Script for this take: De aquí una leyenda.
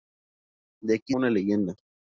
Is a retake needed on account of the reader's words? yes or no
no